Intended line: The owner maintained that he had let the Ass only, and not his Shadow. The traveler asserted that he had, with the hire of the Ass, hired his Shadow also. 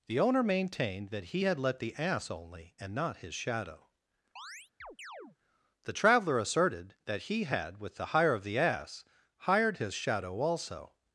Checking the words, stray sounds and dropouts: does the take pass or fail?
fail